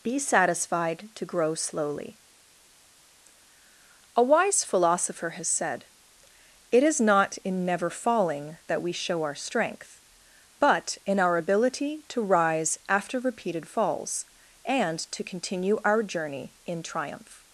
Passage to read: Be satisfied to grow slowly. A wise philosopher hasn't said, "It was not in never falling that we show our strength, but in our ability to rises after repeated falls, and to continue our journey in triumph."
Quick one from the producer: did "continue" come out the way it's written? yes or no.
yes